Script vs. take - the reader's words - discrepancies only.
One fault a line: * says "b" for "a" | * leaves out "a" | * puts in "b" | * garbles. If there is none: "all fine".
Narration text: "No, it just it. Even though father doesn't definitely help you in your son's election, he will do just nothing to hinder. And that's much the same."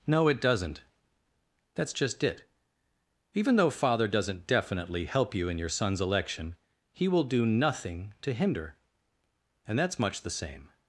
* puts in "doesn't That's"
* leaves out "just"